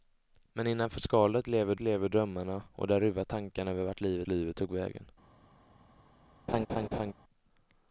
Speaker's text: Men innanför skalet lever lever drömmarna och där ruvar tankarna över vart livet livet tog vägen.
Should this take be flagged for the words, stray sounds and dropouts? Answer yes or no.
yes